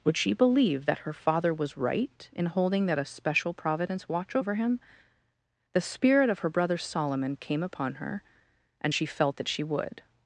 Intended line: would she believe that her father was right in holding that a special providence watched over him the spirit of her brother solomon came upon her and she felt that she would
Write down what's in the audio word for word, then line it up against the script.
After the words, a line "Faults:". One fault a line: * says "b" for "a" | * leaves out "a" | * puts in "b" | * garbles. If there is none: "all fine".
would she believe that her father was right in holding that a special providence watch over him the spirit of her brother solomon came upon her and she felt that she would
Faults:
* says "watch" for "watched"